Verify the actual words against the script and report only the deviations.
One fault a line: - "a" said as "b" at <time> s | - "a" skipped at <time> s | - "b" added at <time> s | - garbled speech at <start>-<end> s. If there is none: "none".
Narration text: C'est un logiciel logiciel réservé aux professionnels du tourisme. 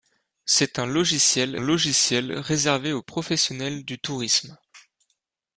none